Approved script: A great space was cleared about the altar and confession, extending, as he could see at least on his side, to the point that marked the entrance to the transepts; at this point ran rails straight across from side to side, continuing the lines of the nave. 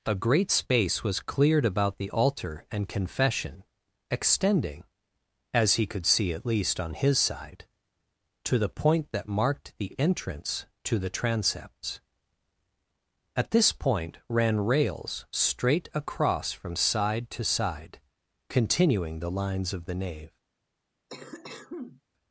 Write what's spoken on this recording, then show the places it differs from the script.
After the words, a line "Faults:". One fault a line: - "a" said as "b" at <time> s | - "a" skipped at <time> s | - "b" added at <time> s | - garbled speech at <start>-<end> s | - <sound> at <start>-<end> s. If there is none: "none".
A great space was cleared about the altar and confession, extending, as he could see at least on his side, to the point that marked the entrance to the transepts; at this point ran rails straight across from side to side, continuing the lines of the nave.
Faults:
- cough at 21.1-22.0 s